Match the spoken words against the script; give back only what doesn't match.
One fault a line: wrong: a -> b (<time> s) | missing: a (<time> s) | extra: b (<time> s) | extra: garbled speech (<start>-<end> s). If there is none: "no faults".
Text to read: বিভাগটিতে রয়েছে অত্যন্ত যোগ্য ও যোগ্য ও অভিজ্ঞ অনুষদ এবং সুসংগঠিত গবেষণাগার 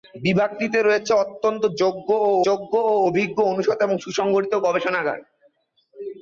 no faults